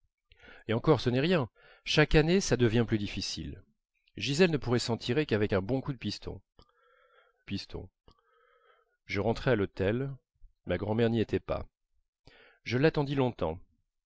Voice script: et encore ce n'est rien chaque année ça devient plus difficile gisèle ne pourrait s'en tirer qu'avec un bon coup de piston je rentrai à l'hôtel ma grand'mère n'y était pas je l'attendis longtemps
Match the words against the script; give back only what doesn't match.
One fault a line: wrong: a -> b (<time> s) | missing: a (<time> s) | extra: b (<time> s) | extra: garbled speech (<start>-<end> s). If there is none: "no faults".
extra: piston (7.4 s)